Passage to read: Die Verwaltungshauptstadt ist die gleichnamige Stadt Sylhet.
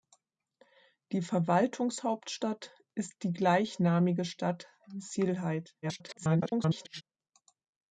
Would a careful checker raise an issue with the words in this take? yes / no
yes